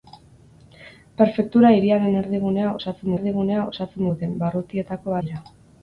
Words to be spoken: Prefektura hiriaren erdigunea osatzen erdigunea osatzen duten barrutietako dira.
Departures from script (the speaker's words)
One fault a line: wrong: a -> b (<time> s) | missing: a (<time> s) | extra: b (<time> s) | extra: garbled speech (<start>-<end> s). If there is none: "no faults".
no faults